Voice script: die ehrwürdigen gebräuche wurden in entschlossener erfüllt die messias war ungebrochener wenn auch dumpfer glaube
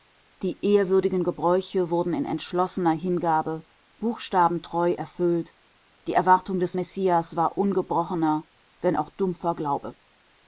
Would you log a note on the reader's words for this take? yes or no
yes